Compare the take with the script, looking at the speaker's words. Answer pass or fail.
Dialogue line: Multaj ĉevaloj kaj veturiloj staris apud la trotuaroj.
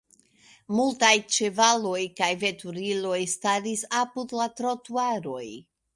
pass